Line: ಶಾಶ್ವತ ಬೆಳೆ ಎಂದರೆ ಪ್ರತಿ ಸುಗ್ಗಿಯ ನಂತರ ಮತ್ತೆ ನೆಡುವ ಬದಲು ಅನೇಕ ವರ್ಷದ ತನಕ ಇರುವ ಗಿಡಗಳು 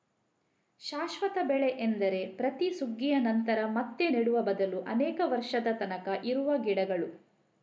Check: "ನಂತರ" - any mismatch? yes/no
no